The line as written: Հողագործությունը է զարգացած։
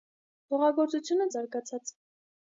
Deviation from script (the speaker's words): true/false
false